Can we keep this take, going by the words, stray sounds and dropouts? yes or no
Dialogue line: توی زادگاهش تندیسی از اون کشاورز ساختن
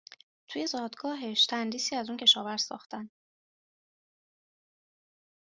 yes